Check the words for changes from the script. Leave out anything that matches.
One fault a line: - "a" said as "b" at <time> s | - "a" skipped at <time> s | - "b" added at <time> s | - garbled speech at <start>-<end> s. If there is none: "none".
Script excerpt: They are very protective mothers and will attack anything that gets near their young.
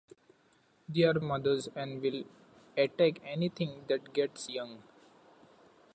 - "very protective" skipped at 1.2 s
- "near their" skipped at 4.5 s